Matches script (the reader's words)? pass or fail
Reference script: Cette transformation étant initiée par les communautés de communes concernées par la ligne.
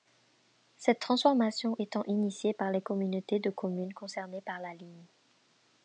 pass